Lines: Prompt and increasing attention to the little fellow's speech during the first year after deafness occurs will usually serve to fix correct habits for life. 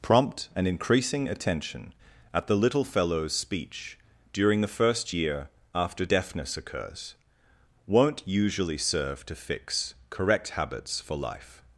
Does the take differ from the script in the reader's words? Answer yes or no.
yes